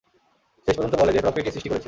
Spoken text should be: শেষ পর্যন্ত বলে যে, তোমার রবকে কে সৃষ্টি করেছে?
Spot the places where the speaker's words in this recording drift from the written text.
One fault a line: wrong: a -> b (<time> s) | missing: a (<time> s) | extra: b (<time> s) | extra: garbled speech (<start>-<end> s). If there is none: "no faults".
missing: তোমার (1.2 s)